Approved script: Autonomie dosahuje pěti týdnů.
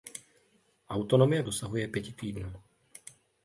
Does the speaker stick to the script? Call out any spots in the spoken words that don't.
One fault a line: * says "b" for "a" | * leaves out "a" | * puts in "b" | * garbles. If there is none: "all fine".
all fine